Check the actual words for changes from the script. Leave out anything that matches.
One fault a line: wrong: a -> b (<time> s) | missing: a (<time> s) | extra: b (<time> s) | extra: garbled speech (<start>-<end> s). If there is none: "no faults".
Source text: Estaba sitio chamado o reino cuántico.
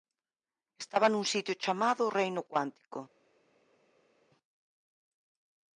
extra: nun (1.1 s)